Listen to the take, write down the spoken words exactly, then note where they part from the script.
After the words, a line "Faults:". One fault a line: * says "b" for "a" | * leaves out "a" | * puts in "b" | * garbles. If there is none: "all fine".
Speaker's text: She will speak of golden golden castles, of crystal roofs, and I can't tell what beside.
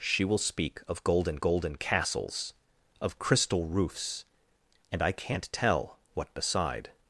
She will speak of golden golden castles, of crystal roofs, and I can't tell what beside.
Faults:
all fine